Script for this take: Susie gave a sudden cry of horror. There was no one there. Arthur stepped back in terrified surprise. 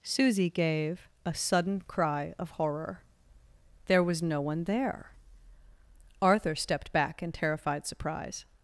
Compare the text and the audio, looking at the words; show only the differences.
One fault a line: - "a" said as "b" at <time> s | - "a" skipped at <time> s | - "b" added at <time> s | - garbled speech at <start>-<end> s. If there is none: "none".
none